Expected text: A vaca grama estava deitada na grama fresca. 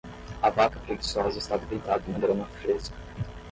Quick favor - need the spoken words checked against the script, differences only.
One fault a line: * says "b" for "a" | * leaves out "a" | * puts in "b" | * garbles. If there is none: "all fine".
* says "preguiçosa" for "grama"